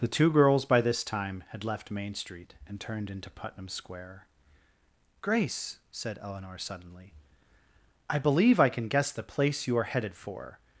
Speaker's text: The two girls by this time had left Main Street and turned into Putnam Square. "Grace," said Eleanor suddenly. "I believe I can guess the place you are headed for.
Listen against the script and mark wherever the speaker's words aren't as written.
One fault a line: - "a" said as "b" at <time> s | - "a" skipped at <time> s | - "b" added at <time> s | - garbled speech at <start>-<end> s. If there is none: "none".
none